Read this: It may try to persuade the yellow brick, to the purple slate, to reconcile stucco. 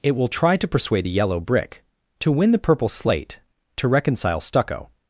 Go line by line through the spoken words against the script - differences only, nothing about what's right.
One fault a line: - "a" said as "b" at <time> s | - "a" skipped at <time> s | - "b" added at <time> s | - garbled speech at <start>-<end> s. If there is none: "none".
- "may" said as "will" at 0.1 s
- "win" added at 2.3 s